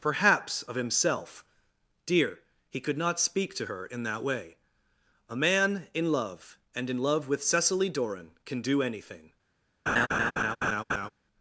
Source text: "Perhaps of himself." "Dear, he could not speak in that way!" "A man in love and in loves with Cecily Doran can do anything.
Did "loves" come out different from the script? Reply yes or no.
yes